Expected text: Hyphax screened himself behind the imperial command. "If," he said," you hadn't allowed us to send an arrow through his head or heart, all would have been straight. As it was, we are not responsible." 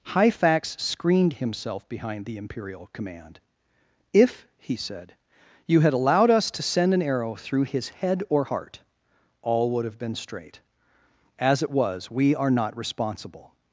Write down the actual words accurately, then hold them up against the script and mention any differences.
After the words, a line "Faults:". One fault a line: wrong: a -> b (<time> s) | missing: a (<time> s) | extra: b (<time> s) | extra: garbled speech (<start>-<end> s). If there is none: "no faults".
Hyphax screened himself behind the imperial command. "If," he said," you had allowed us to send an arrow through his head or heart, all would have been straight. As it was, we are not responsible."
Faults:
wrong: hadn't -> had (5.8 s)